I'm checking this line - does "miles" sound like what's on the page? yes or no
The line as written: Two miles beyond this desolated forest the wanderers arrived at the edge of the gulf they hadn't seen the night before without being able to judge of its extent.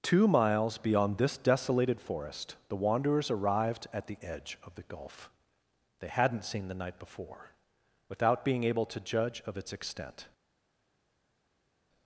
yes